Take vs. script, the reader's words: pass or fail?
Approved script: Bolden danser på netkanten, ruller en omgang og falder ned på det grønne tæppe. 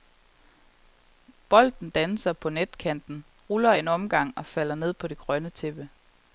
pass